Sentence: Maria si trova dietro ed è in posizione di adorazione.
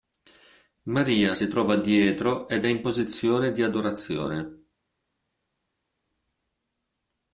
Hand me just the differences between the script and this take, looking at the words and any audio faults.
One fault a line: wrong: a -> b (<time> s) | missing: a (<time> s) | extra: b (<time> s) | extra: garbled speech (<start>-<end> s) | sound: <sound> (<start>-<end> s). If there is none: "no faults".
no faults